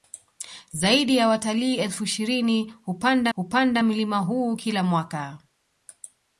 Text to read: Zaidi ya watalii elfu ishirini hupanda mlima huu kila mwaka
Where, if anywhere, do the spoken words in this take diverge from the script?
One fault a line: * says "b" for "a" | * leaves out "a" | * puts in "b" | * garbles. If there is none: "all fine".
* puts in "hupanda"